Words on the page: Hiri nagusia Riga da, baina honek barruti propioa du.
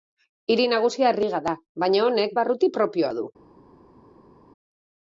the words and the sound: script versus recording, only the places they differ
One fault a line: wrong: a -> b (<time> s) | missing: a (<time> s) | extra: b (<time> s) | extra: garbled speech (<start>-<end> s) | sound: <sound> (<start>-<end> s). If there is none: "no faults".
no faults